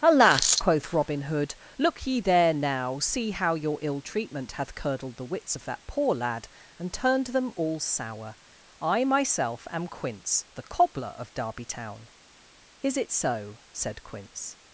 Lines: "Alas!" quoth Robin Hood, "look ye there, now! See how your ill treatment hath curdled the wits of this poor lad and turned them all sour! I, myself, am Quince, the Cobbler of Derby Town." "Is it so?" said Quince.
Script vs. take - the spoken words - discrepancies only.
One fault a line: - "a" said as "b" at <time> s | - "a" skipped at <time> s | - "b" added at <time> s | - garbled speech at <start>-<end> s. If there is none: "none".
- "this" said as "that" at 5.7 s